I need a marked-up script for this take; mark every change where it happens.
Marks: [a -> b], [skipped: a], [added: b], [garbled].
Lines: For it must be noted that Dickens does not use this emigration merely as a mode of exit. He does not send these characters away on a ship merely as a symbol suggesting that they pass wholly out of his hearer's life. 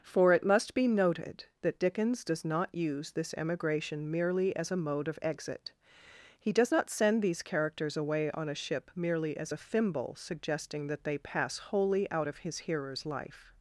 For it must be noted that Dickens does not use this emigration merely as a mode of exit. He does not send these characters away on a ship merely as a [symbol -> thimble] suggesting that they pass wholly out of his hearer's life.